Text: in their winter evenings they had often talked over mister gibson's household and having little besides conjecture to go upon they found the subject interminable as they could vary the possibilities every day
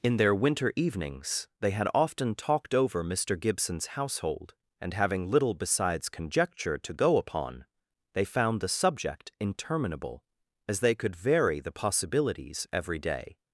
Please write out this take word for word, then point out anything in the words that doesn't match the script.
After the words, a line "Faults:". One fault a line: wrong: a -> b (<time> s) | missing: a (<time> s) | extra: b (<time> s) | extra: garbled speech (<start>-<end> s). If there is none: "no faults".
in their winter evenings they had often talked over mister gibson's household and having little besides conjecture to go upon they found the subject interminable as they could vary the possibilities every day
Faults:
no faults